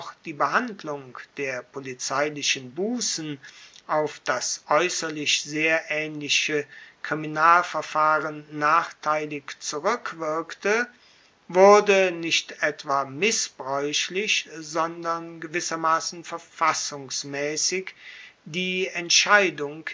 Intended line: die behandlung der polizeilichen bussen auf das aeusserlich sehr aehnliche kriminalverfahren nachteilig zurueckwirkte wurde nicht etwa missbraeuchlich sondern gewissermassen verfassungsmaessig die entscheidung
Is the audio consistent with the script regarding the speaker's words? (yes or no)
yes